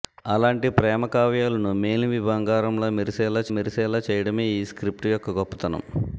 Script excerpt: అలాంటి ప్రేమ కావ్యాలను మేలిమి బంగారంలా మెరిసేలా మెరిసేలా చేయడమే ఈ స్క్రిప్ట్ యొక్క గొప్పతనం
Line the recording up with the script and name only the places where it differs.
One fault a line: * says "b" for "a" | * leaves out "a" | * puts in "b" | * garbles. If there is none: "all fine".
all fine